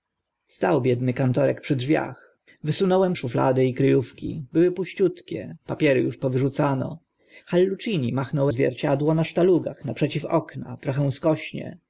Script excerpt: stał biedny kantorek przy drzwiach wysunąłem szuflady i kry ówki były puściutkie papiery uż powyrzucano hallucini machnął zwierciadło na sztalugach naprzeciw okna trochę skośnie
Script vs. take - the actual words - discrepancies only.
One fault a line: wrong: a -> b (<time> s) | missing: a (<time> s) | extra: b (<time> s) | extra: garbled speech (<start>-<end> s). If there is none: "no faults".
no faults